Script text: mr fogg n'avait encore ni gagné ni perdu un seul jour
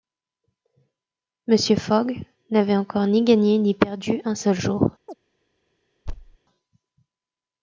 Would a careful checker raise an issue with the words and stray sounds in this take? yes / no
yes